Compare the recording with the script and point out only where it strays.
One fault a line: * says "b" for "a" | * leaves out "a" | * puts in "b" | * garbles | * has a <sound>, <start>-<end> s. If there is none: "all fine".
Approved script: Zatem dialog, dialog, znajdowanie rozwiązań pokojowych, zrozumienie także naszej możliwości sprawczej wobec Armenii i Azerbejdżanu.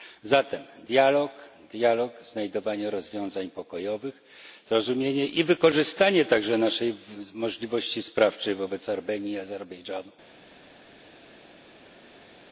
* puts in "i wykorzystanie"